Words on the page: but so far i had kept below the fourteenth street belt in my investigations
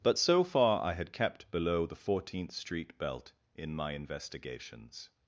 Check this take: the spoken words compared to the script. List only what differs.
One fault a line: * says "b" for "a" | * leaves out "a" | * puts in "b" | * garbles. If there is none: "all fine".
all fine